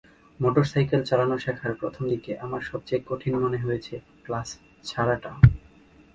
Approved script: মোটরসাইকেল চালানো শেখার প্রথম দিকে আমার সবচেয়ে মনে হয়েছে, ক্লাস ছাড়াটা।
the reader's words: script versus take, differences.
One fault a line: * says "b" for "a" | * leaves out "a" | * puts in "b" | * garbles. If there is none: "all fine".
* puts in "কঠিন"